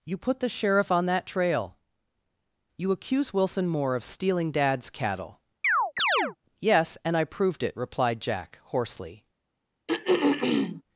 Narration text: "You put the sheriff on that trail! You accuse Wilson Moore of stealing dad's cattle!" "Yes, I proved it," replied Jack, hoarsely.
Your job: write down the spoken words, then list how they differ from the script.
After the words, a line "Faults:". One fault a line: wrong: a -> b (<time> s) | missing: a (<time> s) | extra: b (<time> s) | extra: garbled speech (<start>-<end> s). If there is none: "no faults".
"You put the sheriff on that trail! You accuse Wilson Moore of stealing dad's cattle!" "Yes, and I proved it," replied Jack, hoarsely.
Faults:
extra: and (7.0 s)